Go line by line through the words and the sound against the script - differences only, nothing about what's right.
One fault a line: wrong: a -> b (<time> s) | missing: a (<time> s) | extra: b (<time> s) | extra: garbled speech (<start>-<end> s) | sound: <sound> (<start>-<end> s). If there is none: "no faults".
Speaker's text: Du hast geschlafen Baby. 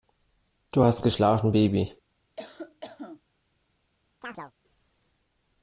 sound: cough (2.4-3.2 s)
sound: chirp (4.2-4.5 s)